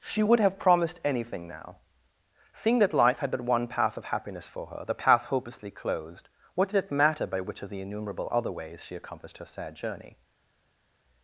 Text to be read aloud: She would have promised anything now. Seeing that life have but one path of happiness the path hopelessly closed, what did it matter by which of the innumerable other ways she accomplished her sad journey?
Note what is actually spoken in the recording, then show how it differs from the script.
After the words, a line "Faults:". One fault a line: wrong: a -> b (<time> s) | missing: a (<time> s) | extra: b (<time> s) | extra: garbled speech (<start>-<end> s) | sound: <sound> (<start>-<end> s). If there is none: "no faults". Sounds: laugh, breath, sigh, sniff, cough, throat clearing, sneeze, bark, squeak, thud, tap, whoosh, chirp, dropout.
She would have promised anything now. Seeing that life had but one path of happiness for her, the path hopelessly closed, what did it matter by which of the innumerable other ways she accomplished her sad journey?
Faults:
wrong: have -> had (3.2 s)
extra: for her (4.5 s)